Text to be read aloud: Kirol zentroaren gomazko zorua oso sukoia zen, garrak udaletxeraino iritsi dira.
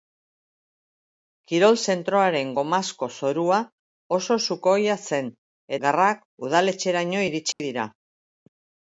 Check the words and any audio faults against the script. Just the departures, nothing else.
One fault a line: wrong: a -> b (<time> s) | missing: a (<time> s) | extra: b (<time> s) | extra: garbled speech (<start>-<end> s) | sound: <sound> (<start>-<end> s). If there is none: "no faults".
sound: dropout (7.5-7.6 s)